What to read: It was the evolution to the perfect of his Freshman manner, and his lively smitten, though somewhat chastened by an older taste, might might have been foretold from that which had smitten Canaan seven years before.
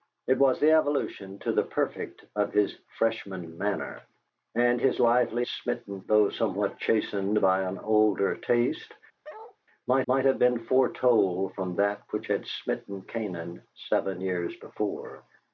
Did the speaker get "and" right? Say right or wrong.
right